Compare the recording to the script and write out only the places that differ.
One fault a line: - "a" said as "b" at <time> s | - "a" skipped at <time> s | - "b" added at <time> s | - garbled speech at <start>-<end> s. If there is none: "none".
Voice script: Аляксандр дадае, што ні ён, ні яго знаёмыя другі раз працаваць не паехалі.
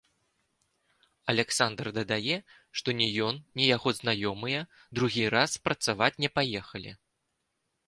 none